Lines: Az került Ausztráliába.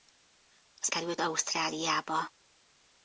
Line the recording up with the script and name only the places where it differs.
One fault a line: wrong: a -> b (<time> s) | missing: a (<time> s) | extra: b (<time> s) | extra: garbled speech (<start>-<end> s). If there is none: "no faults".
no faults